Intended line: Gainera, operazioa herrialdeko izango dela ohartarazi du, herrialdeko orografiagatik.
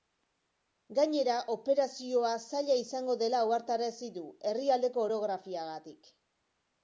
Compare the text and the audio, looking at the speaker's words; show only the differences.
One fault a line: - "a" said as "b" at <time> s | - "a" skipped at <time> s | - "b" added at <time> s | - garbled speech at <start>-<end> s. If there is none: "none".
- "herrialdeko" said as "zaila" at 2.5 s